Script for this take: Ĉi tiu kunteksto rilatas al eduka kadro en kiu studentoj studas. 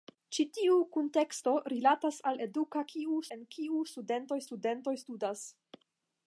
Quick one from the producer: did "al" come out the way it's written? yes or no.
yes